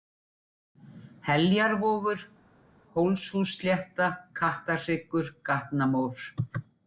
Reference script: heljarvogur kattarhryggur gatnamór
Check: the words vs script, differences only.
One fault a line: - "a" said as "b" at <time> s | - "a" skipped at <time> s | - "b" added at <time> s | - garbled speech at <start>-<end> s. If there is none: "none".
- "hólshússlétta" added at 3.0 s